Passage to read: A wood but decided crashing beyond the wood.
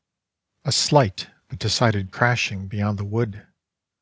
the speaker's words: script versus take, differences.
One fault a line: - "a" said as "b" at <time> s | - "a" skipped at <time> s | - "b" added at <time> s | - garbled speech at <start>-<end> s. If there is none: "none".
- "wood" said as "slight" at 0.7 s